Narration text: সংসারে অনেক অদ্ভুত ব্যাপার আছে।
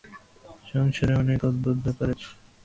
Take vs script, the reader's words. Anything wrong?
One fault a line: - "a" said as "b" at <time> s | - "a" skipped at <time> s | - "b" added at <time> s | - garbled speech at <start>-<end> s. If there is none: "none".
none